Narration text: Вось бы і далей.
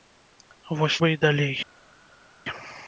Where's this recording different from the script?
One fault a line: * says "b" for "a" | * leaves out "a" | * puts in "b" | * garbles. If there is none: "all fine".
all fine